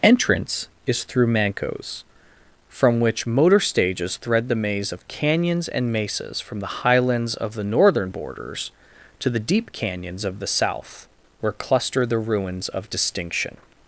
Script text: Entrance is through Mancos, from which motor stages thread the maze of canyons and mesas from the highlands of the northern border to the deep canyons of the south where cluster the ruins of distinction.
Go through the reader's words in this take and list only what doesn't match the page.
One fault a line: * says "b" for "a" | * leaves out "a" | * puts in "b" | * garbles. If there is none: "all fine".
* says "borders" for "border"